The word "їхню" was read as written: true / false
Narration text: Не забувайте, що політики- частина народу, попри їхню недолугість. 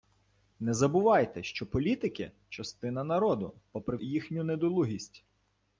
true